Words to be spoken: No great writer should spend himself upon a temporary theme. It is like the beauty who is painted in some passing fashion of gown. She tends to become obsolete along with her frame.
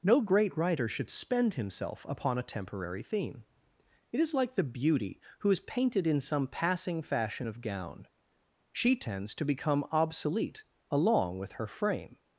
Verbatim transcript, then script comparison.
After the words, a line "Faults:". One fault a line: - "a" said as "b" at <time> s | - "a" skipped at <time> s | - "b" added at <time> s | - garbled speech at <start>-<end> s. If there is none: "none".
No great writer should spend himself upon a temporary theme. It is like the beauty who is painted in some passing fashion of gown. She tends to become obsolete along with her frame.
Faults:
none